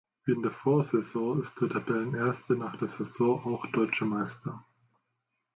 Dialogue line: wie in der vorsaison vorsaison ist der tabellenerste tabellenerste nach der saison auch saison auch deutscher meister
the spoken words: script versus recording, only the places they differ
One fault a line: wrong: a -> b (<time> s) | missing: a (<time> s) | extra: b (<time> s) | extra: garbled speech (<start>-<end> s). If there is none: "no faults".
missing: vorsaison (1.4 s)
missing: tabellenerste (2.5 s)
missing: saison auch (3.7 s)